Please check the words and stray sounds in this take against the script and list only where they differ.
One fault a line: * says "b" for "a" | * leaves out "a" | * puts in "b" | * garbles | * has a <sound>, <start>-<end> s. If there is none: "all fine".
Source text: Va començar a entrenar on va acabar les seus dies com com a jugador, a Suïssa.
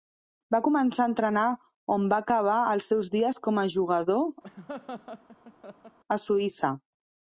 * says "els" for "les"
* leaves out "com"
* has a laugh, 4.4-6.0 s